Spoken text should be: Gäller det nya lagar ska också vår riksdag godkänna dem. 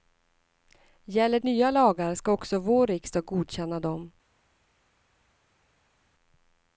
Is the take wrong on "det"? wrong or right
wrong